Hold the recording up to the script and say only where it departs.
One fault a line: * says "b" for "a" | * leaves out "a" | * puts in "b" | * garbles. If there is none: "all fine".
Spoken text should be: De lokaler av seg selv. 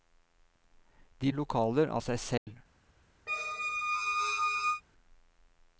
all fine